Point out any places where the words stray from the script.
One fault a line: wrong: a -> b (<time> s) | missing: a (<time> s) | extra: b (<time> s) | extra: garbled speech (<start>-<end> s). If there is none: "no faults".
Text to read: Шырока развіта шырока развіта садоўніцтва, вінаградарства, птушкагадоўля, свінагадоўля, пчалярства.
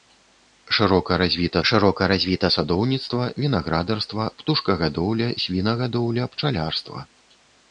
no faults